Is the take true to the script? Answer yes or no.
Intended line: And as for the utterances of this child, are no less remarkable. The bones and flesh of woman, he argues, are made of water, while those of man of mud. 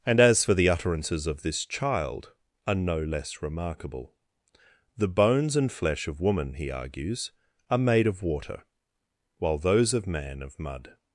yes